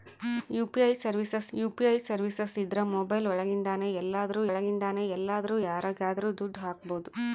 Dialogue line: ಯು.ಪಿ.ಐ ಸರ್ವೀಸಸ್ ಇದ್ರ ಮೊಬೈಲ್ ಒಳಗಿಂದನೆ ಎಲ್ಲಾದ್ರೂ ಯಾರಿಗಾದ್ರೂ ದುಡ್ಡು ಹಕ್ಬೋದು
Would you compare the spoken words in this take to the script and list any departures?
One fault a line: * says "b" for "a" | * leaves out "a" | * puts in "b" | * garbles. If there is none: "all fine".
* puts in "ಯು.ಪಿ.ಐ ಸರ್ವೀಸಸ್"
* puts in "ಒಳಗಿಂದನೆ ಎಲ್ಲಾದ್ರೂ"